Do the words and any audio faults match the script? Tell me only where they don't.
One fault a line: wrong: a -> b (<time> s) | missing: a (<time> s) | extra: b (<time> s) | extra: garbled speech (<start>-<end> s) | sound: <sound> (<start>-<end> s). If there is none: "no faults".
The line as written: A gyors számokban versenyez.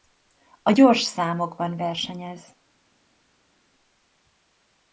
no faults